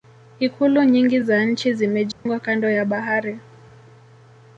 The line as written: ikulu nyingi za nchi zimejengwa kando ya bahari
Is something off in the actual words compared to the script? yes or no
no